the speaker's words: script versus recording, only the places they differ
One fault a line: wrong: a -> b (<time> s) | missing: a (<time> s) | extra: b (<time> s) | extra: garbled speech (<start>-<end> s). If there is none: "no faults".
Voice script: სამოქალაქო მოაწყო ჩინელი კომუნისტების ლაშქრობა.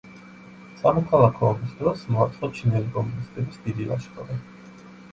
extra: ომის დროს (1.5 s)
extra: დიდი (3.7 s)